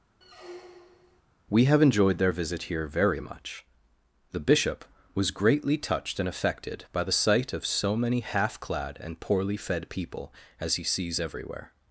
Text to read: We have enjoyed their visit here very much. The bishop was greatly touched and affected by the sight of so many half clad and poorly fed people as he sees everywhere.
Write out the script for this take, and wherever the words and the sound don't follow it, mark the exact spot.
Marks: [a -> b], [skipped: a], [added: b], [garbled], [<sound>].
[squeak] We have enjoyed their visit here very much. The bishop was greatly touched and affected by the sight of so many half clad and poorly fed people as he sees everywhere.